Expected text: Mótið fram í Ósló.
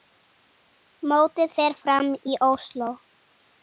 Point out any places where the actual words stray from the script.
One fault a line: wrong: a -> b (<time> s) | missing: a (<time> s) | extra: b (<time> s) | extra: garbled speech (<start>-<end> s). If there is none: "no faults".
extra: fer (1.6 s)